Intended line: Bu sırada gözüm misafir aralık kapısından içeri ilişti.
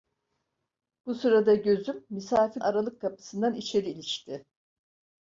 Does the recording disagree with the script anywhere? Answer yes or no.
no